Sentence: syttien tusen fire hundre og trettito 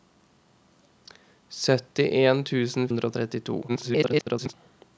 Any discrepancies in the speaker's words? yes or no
yes